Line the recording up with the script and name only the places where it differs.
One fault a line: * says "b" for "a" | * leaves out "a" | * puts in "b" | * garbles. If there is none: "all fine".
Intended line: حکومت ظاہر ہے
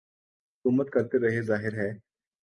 * puts in "کرتے رہے"